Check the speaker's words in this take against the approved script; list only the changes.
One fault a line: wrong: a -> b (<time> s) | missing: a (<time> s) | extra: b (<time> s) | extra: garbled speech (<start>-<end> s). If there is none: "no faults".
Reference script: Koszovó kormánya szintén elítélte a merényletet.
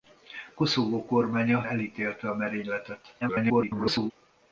missing: szintén (1.7 s)
extra: garbled speech (3.2-4.1 s)